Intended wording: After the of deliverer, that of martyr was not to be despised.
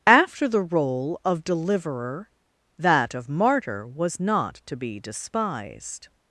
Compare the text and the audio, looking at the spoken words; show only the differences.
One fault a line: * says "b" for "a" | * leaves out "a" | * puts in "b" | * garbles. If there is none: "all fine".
* puts in "role"